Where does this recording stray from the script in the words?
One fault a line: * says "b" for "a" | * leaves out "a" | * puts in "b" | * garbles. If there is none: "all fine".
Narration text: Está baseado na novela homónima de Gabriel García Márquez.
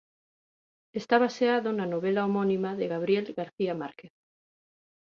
all fine